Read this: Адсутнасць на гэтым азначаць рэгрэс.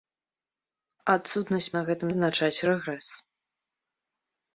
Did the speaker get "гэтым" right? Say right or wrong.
right